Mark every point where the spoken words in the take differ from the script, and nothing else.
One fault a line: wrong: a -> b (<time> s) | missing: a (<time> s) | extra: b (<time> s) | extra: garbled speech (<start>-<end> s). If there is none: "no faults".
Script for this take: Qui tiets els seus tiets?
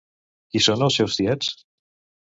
wrong: tiets -> són (0.7 s)